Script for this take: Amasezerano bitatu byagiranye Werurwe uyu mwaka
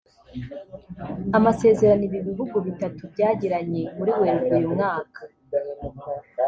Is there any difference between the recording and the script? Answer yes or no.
yes